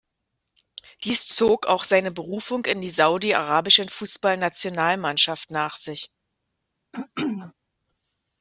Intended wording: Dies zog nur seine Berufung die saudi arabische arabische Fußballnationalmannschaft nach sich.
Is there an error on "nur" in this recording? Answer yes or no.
yes